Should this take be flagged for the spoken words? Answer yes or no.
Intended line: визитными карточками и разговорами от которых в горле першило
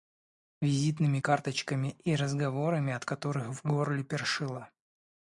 no